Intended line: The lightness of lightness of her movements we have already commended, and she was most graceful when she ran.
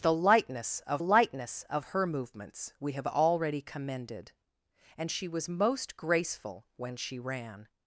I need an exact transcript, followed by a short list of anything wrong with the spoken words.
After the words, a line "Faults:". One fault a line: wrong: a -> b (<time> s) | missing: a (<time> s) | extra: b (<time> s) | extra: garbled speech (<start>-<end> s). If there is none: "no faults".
The lightness of lightness of her movements we have already commended, and she was most graceful when she ran.
Faults:
no faults